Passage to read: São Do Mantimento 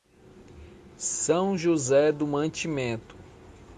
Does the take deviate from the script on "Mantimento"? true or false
false